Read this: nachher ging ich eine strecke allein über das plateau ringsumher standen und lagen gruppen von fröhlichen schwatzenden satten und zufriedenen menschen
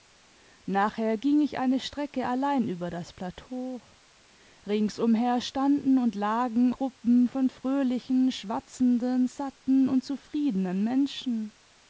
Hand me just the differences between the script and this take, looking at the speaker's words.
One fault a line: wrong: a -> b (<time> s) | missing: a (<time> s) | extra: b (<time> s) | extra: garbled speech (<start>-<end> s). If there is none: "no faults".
no faults